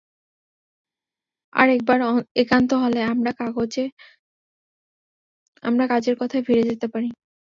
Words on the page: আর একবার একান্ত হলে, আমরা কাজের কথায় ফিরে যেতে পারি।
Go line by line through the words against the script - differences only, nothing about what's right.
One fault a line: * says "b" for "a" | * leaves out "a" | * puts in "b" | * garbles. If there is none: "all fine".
all fine